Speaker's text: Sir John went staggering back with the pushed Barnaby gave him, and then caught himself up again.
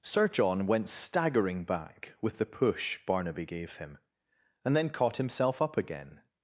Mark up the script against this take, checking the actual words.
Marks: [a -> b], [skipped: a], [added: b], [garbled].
Sir John went staggering back with the [pushed -> push] Barnaby gave him, and then caught himself up again.